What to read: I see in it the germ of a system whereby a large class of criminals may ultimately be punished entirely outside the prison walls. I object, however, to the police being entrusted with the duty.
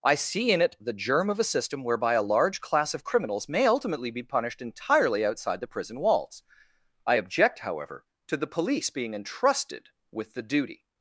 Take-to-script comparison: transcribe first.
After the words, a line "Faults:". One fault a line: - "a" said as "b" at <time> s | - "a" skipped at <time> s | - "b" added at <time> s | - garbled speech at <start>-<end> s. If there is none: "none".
I see in it the germ of a system whereby a large class of criminals may ultimately be punished entirely outside the prison walls. I object, however, to the police being entrusted with the duty.
Faults:
none